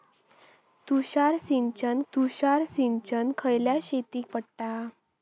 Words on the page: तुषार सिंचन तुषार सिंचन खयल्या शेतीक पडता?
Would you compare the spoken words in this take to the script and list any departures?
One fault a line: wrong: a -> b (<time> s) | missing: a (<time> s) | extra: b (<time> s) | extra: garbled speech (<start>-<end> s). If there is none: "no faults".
no faults